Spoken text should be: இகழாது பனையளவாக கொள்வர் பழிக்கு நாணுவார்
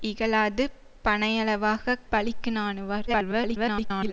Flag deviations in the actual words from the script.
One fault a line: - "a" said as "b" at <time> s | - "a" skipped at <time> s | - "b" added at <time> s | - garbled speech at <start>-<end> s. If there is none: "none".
- "கொள்வர்" skipped at 2.0 s
- garbled speech at 3.1-4.1 s